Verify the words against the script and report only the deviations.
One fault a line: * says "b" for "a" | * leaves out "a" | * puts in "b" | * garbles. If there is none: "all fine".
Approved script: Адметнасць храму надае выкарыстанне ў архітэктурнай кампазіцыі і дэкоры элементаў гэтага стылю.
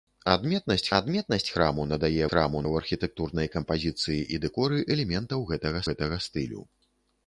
* puts in "адметнасць"
* says "храму" for "выкарыстанне"
* puts in "гэтага"